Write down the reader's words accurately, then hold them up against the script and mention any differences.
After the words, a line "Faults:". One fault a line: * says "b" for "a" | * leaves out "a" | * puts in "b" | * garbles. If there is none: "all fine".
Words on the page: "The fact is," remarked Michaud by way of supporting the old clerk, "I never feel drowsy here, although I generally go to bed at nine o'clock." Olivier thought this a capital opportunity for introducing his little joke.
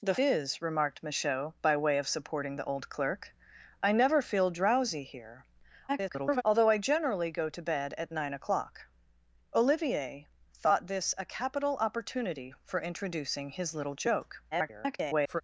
"The is," remarked Michaud by way of supporting the old clerk, "I never feel drowsy here, [garbled] although I generally go to bed at nine o'clock." Olivier thought this a capital opportunity for introducing his little joke. [garbled]
Faults:
* leaves out "fact"
* garbles
* garbles